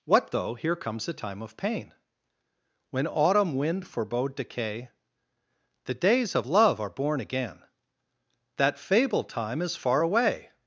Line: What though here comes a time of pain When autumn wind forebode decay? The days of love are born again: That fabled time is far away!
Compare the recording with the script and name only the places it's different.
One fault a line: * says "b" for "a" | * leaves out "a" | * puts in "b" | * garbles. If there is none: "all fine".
all fine